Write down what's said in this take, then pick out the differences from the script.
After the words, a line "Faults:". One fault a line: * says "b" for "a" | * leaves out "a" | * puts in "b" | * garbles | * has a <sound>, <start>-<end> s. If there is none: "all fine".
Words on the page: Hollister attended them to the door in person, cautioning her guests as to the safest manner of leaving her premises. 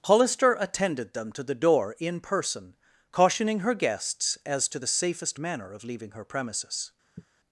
Hollister attended them to the door in person, cautioning her guests as to the safest manner of leaving her premises.
Faults:
* has a sigh, 7.2-7.3 s